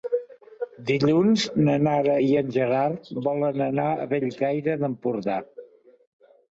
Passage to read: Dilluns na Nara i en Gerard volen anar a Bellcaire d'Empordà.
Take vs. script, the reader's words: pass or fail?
pass